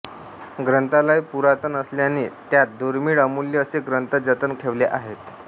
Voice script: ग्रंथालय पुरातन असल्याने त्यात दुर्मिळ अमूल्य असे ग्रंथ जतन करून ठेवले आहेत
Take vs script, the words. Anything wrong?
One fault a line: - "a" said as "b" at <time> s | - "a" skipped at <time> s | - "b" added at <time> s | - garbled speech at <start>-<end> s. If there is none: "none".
- "करून" skipped at 4.5 s